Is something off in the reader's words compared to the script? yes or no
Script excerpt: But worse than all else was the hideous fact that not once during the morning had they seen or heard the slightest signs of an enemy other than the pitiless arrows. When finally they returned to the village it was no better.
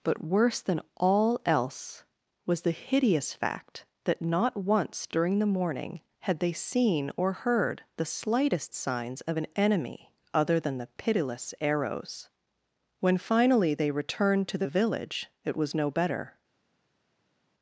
no